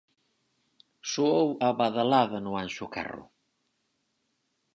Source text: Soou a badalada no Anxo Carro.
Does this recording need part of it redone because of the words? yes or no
no